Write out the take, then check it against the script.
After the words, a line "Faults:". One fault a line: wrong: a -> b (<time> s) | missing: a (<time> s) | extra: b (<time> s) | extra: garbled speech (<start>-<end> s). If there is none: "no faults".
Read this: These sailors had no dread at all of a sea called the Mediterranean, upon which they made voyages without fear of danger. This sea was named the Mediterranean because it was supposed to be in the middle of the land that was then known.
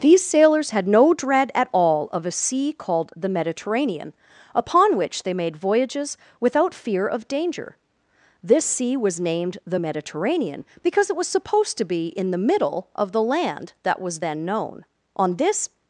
These sailors had no dread at all of a sea called the Mediterranean, upon which they made voyages without fear of danger. This sea was named the Mediterranean because it was supposed to be in the middle of the land that was then known. On this
Faults:
extra: On this (15.2 s)